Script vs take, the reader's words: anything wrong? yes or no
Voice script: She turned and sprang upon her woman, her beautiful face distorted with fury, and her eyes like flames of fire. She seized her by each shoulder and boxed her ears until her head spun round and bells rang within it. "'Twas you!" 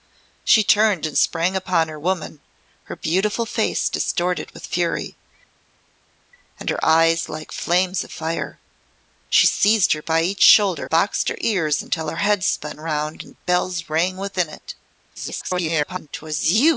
yes